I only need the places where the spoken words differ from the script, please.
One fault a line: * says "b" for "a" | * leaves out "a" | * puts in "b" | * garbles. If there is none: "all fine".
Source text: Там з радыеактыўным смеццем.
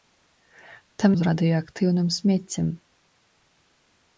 all fine